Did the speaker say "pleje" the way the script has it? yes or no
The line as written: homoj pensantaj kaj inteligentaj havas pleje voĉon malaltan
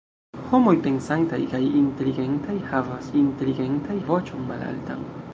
no